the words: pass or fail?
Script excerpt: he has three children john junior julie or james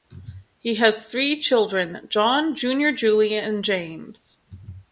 fail